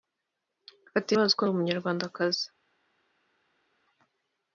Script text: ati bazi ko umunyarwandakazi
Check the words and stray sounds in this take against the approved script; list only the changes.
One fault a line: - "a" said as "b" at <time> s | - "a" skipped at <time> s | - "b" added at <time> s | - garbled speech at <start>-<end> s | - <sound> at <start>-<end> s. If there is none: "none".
none